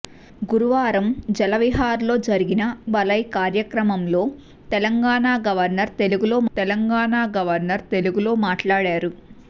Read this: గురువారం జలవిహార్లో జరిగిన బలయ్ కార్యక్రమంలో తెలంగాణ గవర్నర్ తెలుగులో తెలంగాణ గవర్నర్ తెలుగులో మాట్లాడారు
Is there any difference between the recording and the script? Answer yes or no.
no